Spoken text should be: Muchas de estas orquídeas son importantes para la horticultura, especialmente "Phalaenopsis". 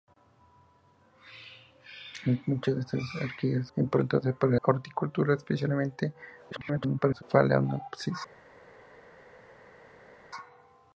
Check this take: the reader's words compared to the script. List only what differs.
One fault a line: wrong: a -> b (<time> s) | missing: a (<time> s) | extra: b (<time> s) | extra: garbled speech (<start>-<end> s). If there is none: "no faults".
missing: son (3.7 s)
missing: la (4.6 s)
extra: garbled speech (6.5-7.2 s)